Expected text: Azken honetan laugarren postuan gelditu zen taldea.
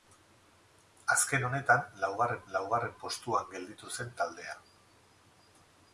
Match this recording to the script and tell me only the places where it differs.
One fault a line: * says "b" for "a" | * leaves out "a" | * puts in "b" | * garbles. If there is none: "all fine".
* puts in "laugarren"